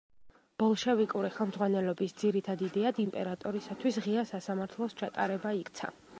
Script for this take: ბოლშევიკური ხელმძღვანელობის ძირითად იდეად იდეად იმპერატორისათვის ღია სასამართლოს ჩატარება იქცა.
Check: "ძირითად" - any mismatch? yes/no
no